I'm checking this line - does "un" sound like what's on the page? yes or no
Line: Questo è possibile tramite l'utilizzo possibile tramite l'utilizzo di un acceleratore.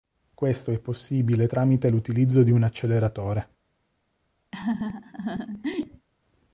yes